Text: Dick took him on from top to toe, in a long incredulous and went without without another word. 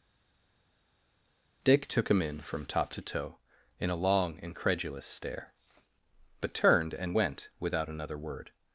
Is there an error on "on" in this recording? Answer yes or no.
yes